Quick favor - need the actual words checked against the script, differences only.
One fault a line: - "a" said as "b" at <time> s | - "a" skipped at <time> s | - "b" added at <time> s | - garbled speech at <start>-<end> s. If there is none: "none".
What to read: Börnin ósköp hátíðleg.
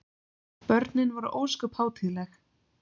- "voru" added at 1.1 s